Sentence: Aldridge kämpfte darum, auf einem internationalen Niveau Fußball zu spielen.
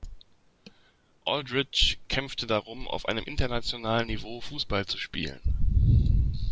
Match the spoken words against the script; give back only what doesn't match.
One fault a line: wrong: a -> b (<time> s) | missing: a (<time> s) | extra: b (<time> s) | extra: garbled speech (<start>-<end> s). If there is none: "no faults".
no faults